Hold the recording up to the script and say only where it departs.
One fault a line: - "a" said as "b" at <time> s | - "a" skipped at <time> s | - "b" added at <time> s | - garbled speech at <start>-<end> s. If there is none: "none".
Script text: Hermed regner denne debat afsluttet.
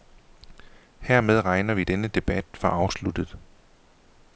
- "vi" added at 1.7 s
- "for" added at 2.5 s